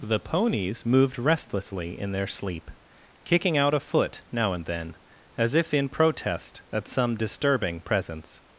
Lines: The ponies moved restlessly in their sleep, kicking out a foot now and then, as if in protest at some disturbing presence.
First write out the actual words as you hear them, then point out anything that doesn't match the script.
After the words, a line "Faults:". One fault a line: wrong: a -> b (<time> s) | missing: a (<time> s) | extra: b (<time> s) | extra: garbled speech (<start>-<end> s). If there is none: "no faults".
The ponies moved restlessly in their sleep, kicking out a foot now and then, as if in protest at some disturbing presence.
Faults:
no faults